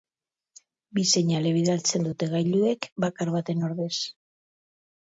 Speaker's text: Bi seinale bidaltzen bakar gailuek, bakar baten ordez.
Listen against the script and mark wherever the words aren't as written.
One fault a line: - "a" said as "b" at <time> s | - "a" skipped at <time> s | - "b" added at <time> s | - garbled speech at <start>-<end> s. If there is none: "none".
- "bakar" said as "dute" at 2.1 s